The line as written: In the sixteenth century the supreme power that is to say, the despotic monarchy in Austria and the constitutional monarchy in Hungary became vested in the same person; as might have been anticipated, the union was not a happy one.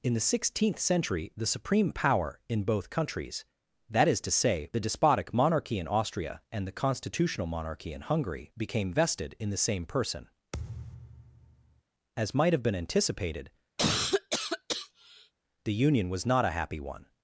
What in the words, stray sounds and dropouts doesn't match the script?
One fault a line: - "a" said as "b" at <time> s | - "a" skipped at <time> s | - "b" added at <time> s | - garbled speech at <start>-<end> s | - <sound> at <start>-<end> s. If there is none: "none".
- "in both countries" added at 2.5 s
- thud at 10.5-11.8 s
- cough at 13.8-15.3 s